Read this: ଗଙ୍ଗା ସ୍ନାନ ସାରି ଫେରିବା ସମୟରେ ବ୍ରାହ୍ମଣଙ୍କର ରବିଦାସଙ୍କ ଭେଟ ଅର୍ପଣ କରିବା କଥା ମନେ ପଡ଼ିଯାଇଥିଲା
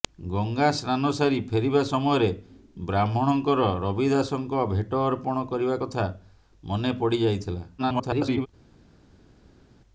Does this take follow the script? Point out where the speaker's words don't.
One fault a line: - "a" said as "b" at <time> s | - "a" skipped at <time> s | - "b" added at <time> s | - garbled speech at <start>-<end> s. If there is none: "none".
- garbled speech at 7.8-8.5 s